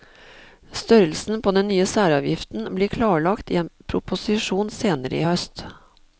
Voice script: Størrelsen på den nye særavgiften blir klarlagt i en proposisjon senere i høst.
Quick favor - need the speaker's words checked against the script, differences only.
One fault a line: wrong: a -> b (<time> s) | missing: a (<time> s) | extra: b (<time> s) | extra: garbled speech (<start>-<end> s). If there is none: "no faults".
no faults